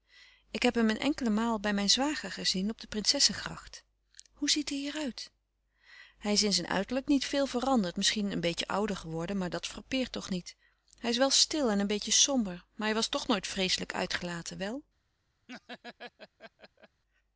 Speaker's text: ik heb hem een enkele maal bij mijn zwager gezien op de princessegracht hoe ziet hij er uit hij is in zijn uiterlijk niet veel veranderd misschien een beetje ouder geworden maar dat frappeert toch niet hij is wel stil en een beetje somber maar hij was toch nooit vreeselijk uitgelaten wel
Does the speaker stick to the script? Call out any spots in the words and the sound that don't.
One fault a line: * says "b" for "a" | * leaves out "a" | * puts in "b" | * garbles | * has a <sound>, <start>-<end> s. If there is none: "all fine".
* has a laugh, 15.5-17.0 s